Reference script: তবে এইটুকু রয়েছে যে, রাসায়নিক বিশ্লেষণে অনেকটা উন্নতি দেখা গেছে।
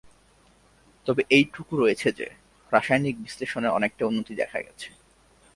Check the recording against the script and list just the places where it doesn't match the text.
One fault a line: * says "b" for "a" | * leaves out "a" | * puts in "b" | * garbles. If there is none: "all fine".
all fine